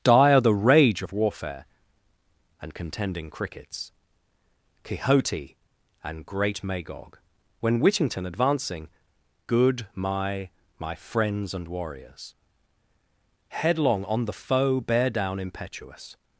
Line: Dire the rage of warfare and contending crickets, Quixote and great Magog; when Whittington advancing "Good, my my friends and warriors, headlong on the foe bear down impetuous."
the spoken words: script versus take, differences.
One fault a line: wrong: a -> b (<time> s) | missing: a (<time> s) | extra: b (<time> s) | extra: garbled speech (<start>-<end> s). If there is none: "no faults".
no faults